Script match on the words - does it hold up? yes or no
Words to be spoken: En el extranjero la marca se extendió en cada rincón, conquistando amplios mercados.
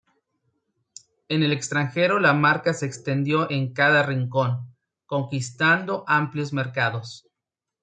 yes